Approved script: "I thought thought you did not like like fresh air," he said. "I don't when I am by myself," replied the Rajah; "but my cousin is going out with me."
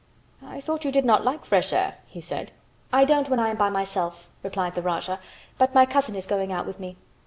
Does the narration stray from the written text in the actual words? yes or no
yes